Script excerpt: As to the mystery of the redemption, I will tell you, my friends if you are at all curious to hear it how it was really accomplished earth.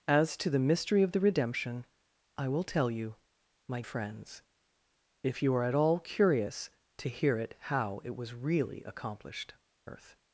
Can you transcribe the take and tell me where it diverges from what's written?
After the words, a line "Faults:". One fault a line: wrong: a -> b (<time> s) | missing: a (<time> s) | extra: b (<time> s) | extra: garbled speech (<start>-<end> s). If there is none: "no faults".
As to the mystery of the redemption, I will tell you, my friends if you are at all curious to hear it how it was really accomplished earth.
Faults:
no faults